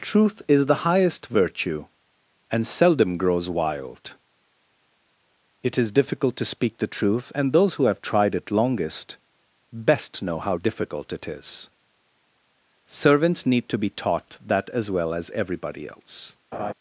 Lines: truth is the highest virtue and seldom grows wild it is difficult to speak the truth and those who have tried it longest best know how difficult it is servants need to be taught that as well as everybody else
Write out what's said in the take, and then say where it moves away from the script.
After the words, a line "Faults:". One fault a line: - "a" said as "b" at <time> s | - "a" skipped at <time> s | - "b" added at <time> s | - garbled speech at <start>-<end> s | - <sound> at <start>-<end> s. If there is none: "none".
truth is the highest virtue and seldom grows wild it is difficult to speak the truth and those who have tried it longest best know how difficult it is servants need to be taught that as well as everybody else
Faults:
- laugh at 16.5-16.7 s